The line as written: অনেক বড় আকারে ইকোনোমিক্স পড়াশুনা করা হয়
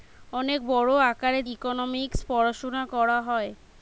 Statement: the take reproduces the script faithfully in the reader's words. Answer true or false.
true